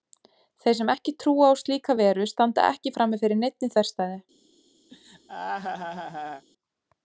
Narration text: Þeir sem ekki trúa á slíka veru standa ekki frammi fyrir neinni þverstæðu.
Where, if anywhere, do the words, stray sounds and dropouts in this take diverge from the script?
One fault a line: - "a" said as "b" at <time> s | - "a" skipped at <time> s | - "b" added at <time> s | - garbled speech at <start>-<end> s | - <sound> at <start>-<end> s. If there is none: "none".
- laugh at 4.9-6.4 s